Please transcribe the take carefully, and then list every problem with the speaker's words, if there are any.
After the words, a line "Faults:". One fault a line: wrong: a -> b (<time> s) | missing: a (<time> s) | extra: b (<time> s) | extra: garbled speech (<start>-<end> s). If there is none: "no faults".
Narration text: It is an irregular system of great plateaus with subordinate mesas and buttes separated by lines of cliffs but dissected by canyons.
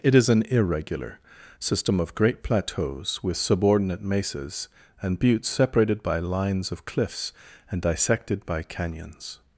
It is an irregular system of great plateaus with subordinate mesas and buttes separated by lines of cliffs and dissected by canyons.
Faults:
wrong: but -> and (7.7 s)